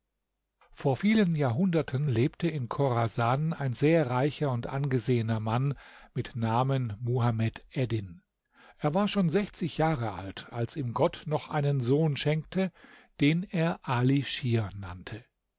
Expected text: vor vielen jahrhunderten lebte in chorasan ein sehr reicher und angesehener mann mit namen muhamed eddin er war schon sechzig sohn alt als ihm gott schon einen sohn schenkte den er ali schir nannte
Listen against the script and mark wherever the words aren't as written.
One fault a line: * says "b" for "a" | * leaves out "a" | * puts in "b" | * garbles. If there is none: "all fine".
* says "jahre" for "sohn"
* says "noch" for "schon"